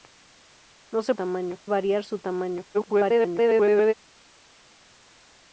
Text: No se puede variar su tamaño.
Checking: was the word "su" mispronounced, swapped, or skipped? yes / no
no